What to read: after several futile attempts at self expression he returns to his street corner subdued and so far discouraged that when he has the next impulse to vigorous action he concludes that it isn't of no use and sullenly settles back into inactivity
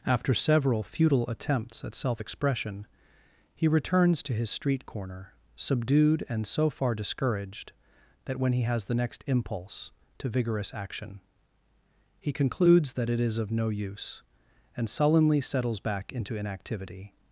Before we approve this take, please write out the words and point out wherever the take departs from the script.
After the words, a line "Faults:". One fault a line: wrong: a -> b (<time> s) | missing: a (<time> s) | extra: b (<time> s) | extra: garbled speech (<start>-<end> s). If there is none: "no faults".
after several futile attempts at self expression he returns to his street corner subdued and so far discouraged that when he has the next impulse to vigorous action he concludes that it is of no use and sullenly settles back into inactivity
Faults:
wrong: isn't -> is (13.2 s)